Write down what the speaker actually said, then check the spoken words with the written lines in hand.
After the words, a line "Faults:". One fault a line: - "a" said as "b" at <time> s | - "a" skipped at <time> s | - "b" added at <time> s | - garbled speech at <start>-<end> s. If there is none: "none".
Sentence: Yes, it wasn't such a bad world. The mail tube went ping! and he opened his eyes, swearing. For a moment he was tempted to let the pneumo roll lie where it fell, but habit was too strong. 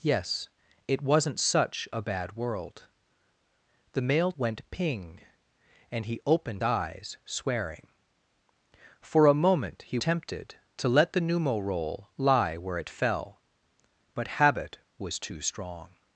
Yes, it wasn't such a bad world. The mail went ping! and he opened eyes, swearing. For a moment he tempted to let the pneumo roll lie where it fell, but habit was too strong.
Faults:
- "tube" skipped at 4.3 s
- "his" skipped at 6.6 s
- "was" skipped at 10.0 s